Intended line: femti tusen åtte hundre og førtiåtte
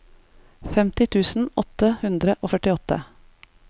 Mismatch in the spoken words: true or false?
false